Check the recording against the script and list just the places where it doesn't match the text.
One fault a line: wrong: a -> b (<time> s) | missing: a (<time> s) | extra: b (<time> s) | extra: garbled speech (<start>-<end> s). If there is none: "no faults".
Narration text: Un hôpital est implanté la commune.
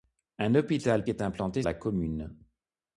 no faults